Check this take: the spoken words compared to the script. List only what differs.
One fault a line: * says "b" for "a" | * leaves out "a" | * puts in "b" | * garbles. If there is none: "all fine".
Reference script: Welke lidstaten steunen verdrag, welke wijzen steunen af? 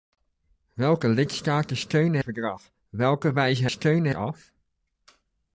all fine